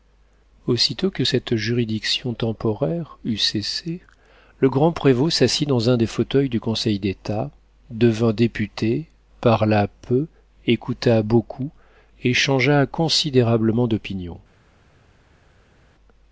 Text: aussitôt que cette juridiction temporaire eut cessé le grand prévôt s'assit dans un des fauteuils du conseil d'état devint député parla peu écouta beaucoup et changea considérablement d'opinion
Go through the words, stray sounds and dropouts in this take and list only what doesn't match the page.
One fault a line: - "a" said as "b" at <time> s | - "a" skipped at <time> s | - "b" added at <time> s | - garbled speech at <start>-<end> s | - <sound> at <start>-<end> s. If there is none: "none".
none